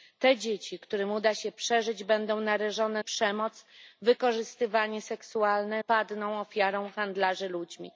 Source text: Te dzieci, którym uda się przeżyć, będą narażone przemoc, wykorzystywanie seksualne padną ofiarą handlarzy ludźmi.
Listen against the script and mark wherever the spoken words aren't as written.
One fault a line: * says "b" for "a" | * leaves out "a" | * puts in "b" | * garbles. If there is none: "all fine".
all fine